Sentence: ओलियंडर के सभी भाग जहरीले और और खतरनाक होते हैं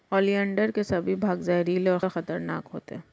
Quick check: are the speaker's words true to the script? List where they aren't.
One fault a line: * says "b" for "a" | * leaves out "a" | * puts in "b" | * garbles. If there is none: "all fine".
all fine